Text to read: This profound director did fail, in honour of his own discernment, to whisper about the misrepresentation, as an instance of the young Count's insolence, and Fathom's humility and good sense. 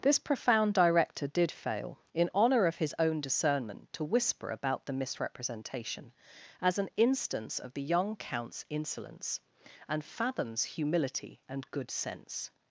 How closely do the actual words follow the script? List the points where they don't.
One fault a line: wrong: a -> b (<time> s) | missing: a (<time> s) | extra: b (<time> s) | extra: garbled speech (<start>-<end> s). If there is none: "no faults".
no faults